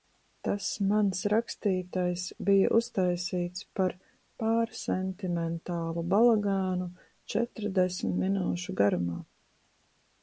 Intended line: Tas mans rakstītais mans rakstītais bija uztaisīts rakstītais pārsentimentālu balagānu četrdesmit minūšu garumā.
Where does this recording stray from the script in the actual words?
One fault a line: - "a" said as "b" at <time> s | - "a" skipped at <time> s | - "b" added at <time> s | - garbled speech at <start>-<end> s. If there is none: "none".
- "mans rakstītais" skipped at 2.2 s
- "rakstītais" said as "par" at 3.8 s